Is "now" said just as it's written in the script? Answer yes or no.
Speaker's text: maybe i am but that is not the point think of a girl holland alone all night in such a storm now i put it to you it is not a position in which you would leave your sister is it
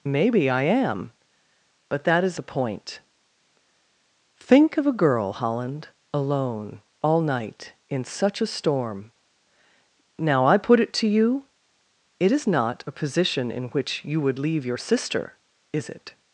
yes